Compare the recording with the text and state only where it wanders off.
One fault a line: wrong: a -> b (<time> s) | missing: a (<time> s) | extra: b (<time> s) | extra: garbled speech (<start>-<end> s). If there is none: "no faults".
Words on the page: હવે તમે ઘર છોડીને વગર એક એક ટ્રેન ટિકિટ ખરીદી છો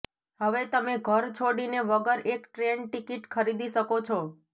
missing: એક (2.5 s)
extra: શકો (3.8 s)